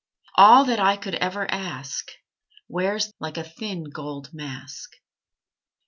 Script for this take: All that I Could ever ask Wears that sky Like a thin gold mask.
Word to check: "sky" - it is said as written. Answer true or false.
false